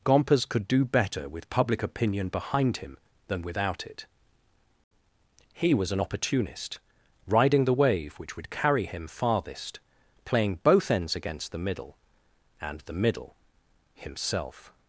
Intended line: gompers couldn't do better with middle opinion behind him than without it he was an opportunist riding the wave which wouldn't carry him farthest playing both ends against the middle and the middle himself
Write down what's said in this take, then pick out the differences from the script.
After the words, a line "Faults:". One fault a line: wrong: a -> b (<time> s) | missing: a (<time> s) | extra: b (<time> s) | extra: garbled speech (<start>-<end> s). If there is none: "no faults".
gompers could do better with public opinion behind him than without it he was an opportunist riding the wave which would carry him farthest playing both ends against the middle and the middle himself
Faults:
wrong: couldn't -> could (0.5 s)
wrong: middle -> public (1.5 s)
wrong: wouldn't -> would (8.4 s)